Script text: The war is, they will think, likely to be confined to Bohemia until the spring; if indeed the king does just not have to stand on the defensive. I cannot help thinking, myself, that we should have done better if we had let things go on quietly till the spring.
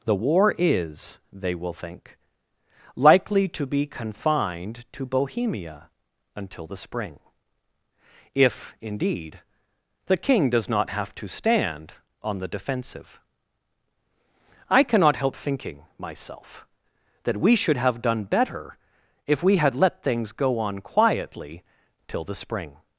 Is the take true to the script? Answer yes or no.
no